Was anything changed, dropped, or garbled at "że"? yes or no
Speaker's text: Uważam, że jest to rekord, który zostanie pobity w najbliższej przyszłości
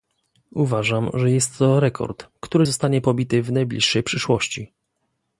no